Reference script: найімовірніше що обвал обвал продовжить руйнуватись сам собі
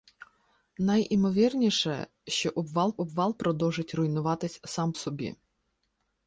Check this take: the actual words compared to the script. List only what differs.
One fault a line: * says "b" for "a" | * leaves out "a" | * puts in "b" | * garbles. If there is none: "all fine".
all fine